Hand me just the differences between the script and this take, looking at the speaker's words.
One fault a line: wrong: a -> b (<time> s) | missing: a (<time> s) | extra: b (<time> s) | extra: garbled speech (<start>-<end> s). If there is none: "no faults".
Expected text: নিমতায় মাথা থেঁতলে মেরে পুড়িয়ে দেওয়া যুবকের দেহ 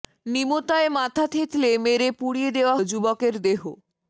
no faults